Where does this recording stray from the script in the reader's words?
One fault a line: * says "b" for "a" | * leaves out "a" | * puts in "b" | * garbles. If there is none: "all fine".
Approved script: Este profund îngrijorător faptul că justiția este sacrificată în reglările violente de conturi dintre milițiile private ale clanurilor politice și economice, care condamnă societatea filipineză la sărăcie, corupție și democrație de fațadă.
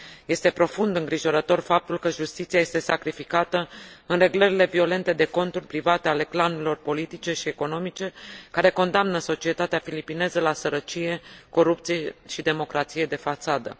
* leaves out "dintre milițiile"